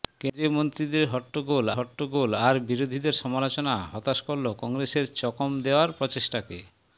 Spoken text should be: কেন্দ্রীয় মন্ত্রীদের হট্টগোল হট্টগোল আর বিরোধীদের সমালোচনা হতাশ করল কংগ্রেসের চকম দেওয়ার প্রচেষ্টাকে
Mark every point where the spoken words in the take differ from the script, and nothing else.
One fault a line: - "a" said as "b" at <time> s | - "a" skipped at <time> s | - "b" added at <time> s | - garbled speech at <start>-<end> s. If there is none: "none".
none